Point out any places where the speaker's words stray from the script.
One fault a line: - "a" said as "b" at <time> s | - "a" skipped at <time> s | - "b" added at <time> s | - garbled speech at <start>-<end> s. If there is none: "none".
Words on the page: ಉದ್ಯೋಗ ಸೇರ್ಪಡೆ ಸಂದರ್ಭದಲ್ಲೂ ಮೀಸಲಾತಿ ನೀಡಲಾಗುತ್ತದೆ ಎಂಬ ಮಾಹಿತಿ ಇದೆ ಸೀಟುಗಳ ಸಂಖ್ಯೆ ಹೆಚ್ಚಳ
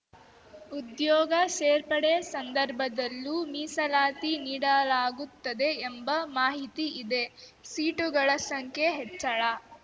none